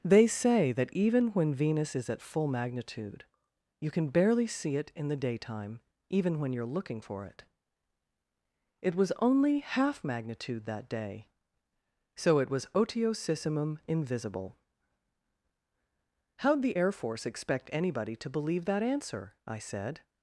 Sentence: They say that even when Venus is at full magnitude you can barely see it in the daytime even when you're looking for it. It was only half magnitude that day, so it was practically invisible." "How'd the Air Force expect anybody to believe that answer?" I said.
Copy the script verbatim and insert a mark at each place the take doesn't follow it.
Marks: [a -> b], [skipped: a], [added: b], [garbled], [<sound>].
They say that even when Venus is at full magnitude you can barely see it in the daytime even when you're looking for it. It was only half magnitude that day, so it was [practically -> otiosissimum] invisible." "How'd the Air Force expect anybody to believe that answer?" I said.